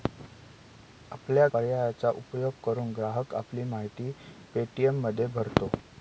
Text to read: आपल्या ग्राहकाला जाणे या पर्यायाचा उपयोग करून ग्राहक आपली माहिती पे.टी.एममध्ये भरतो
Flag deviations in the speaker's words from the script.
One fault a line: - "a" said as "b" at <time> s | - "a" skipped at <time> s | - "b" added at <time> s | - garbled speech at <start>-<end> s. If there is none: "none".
- "ग्राहकाला जाणे या" skipped at 1.5 s